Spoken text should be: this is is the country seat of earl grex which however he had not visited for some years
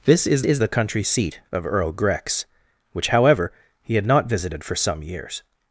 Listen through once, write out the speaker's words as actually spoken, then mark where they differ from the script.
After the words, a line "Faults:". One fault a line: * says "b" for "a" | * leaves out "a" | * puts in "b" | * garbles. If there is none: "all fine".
this is is the country seat of earl grex which however he had not visited for some years
Faults:
all fine